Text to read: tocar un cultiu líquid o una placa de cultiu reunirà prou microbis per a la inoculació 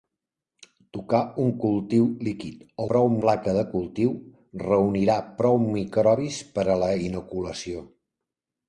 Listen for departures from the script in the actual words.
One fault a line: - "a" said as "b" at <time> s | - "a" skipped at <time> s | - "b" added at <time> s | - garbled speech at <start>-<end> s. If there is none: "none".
- "una" said as "prou" at 2.9 s